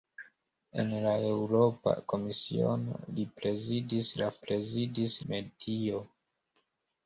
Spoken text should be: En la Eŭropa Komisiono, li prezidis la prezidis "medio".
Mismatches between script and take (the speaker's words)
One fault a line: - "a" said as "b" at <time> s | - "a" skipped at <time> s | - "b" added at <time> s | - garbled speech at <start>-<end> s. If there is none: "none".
none